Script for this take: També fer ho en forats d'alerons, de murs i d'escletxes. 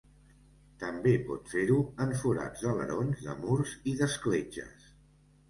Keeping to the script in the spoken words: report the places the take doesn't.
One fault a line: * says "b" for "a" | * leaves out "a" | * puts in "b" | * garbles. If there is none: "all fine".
* puts in "pot"